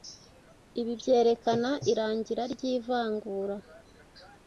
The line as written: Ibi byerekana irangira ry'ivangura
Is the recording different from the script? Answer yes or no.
no